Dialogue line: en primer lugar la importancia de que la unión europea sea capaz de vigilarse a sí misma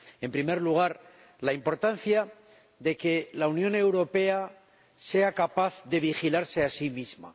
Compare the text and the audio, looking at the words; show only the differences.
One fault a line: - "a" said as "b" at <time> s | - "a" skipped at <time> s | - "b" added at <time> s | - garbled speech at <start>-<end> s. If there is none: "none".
none